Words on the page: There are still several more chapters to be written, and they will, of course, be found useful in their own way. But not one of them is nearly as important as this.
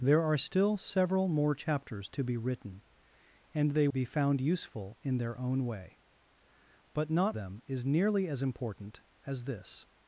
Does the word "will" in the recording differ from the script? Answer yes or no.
yes